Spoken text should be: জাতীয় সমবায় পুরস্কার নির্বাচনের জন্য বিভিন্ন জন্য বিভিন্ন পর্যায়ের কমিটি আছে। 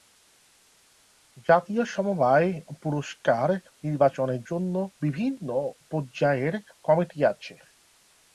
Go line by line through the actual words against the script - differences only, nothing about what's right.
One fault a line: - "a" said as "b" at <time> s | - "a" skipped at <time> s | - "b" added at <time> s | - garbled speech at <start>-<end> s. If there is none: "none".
- "জন্য বিভিন্ন" skipped at 5.5 s